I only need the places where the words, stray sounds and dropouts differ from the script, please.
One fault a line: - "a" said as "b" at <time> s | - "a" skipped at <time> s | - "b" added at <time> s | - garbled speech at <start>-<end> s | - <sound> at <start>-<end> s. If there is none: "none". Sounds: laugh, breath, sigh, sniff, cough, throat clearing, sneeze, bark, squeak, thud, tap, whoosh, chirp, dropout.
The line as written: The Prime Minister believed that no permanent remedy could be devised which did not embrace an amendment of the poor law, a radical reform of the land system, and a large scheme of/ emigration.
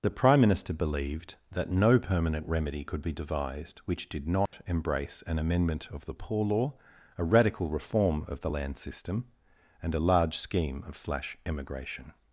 - dropout at 4.5-4.5 s
- "slash" added at 10.9 s